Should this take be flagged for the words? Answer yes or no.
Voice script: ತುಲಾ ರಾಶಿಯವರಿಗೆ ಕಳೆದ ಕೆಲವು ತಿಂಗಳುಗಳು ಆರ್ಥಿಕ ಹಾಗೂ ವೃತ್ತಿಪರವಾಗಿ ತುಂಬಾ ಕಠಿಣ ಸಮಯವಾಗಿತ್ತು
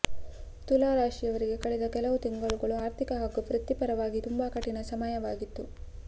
no